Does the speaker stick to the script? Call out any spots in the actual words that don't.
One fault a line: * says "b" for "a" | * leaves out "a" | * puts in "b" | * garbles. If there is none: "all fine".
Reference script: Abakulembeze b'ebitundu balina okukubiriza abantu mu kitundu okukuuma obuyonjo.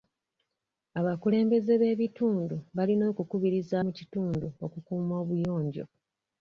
* leaves out "abantu"